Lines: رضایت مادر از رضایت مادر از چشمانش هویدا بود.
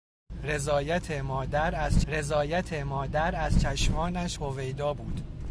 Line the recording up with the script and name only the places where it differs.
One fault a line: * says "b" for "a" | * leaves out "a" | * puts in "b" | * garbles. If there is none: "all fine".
all fine